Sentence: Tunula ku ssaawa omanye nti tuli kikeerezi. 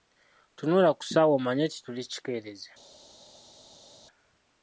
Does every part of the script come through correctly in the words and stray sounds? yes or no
yes